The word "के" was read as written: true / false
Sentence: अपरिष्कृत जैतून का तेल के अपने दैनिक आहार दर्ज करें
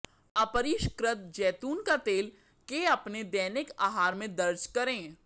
true